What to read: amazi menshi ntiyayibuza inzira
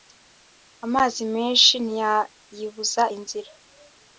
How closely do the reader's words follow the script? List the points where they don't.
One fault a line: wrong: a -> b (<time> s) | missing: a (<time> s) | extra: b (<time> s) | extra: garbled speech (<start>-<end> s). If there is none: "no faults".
no faults